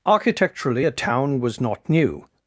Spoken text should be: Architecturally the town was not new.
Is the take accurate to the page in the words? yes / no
no